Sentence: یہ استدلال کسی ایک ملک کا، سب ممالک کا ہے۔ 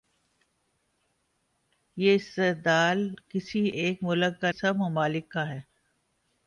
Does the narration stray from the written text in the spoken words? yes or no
no